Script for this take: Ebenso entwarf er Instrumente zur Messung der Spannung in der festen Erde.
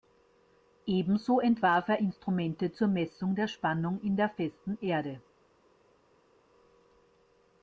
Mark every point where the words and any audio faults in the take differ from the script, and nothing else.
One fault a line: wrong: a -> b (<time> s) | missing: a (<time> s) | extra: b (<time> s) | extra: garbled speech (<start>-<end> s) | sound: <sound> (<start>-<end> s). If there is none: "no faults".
no faults